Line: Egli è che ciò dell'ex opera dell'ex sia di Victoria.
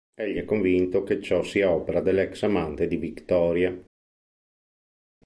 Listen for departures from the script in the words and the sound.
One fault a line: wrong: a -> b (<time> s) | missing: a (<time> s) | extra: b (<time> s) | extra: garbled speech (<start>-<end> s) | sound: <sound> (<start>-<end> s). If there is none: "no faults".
extra: convinto (0.5 s)
wrong: dell'ex -> sia (1.4 s)
wrong: sia -> amante (2.4 s)